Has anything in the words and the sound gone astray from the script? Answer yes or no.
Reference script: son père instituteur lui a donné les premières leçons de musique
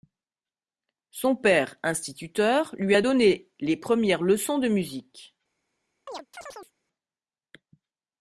yes